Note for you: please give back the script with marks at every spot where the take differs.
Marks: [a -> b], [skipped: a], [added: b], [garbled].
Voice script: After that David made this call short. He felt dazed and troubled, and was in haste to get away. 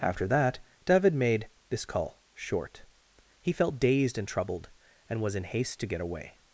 After that David made this call short. He felt dazed and troubled, and was in haste to get away.